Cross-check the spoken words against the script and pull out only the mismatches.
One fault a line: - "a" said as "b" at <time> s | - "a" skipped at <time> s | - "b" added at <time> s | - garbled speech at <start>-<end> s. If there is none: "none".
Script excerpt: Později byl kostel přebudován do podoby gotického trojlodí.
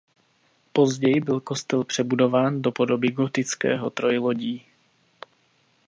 none